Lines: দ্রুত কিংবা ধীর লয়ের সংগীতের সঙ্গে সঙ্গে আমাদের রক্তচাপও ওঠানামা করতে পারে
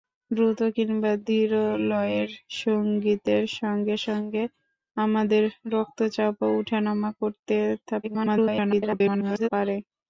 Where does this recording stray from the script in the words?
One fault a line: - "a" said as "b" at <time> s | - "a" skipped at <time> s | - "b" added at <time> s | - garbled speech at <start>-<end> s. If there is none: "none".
- garbled speech at 8.0-9.5 s